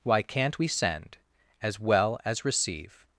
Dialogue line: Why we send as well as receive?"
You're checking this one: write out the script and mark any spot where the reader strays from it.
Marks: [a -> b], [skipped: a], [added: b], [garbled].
Why [added: can't] we send as well as receive?"